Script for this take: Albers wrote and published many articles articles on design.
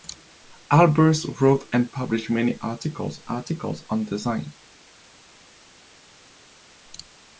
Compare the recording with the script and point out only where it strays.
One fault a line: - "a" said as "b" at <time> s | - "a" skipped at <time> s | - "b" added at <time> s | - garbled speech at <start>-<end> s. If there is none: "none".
none